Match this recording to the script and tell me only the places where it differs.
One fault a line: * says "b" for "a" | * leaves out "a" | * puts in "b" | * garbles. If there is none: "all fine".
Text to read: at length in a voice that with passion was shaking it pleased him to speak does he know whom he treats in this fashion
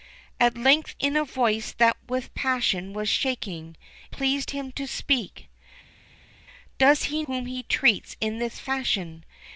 * leaves out "it"
* leaves out "know"